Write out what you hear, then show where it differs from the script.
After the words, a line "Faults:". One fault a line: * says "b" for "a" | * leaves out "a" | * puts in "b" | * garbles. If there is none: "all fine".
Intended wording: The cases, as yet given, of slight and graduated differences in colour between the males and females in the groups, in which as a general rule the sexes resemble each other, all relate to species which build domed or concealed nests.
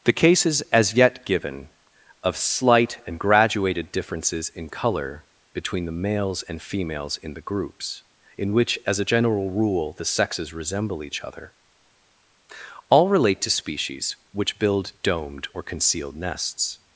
The cases, as yet given, of slight and graduated differences in colour between the males and females in the groups, in which as a general rule the sexes resemble each other, all relate to species which build domed or concealed nests.
Faults:
all fine